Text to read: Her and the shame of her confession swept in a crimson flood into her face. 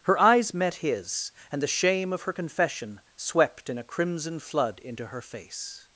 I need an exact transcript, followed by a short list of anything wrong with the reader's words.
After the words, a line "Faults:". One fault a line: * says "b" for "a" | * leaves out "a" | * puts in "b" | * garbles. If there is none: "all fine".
Her eyes met his, and the shame of her confession swept in a crimson flood into her face.
Faults:
* puts in "eyes met his"